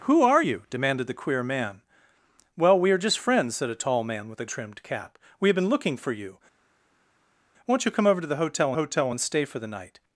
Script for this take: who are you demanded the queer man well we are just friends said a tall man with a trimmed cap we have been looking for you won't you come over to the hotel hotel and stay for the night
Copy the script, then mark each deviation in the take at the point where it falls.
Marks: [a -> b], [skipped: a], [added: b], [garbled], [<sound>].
who are you demanded the queer man well we are just friends said a tall man with a trimmed cap we have been looking for you won't you come over to the hotel hotel and stay for the night